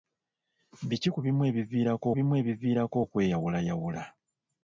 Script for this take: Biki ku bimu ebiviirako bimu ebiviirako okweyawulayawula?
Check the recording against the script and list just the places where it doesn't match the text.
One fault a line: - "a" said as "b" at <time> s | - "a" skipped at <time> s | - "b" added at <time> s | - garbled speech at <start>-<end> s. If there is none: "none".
none